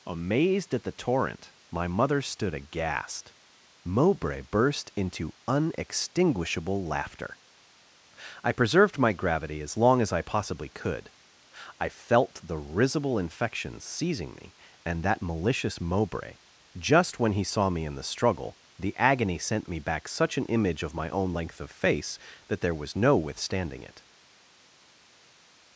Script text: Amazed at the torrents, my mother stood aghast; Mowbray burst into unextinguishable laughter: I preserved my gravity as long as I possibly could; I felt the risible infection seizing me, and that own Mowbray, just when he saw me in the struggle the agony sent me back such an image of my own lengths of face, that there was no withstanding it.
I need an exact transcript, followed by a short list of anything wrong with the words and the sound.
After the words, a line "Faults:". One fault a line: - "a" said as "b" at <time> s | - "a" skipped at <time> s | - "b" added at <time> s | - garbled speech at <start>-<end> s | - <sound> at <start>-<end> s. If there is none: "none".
Amazed at the torrent, my mother stood aghast; Mowbray burst into unextinguishable laughter: I preserved my gravity as long as I possibly could; I felt the risible infection seizing me, and that malicious Mowbray, just when he saw me in the struggle the agony sent me back such an image of my own length of face, that there was no withstanding it.
Faults:
- "torrents" said as "torrent" at 0.9 s
- "own" said as "malicious" at 15.2 s
- "lengths" said as "length" at 21.3 s